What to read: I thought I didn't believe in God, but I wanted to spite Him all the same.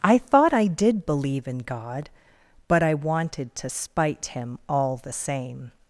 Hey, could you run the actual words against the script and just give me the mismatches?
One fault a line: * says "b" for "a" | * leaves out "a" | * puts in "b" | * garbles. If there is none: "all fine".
* says "did" for "didn't"